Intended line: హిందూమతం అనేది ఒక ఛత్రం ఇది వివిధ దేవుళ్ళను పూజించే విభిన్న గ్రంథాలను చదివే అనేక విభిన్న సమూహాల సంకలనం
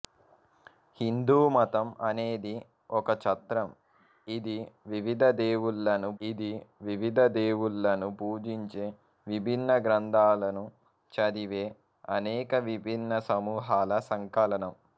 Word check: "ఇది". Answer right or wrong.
right